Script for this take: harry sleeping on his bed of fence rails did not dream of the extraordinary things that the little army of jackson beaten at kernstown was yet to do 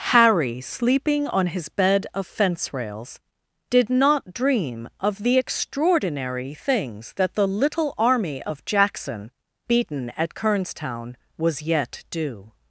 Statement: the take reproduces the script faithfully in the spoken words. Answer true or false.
false